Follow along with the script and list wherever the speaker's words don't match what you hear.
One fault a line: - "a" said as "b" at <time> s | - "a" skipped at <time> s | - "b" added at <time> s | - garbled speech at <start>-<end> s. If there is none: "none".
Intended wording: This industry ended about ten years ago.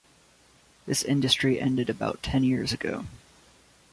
none